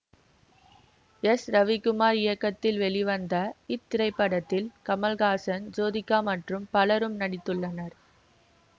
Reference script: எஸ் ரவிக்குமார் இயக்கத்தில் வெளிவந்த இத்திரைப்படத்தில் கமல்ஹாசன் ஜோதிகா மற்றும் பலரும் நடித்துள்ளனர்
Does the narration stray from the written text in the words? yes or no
no